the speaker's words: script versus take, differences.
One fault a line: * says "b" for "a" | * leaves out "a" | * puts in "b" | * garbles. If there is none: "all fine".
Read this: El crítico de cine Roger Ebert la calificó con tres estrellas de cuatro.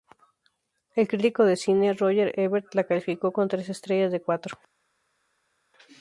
all fine